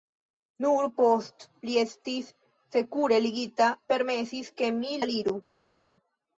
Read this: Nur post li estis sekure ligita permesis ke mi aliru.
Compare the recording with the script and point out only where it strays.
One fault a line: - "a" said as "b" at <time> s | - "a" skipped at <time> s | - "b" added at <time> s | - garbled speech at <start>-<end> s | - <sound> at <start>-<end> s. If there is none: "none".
none